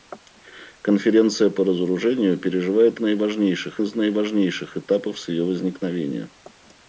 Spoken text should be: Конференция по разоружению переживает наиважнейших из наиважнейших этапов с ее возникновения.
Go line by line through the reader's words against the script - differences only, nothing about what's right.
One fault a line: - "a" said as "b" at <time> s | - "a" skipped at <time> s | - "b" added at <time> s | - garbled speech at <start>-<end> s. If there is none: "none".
none